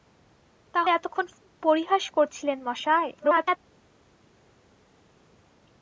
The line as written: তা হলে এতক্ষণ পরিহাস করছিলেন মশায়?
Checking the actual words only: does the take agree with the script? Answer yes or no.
no